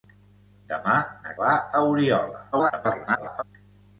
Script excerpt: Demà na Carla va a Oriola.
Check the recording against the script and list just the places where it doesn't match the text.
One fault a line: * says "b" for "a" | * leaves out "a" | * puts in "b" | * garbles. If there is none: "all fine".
* leaves out "Carla"
* garbles